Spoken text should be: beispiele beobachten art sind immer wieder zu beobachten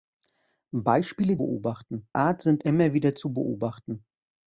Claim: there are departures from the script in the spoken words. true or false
false